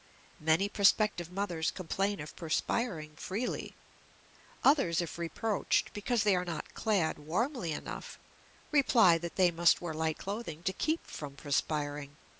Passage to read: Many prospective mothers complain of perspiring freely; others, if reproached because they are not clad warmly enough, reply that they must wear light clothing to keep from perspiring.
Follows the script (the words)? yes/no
yes